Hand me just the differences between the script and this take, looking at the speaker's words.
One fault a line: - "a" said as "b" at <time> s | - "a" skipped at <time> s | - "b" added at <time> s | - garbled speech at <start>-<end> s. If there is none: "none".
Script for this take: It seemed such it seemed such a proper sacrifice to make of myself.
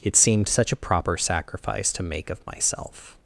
- "it seemed such" skipped at 0.7 s